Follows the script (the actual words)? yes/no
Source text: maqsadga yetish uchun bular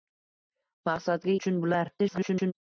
no